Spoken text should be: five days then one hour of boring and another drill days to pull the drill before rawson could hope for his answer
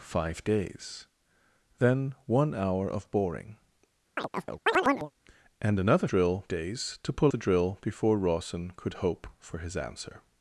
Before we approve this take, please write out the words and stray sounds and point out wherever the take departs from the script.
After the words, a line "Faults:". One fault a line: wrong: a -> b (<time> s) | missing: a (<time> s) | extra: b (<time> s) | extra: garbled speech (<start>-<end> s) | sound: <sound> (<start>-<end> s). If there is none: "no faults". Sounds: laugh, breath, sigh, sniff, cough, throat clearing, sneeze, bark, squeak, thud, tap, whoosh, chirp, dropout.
five days then one hour of boring and another drill days to pull the drill before rawson could hope for his answer
Faults:
sound: chirp (4.2-5.1 s)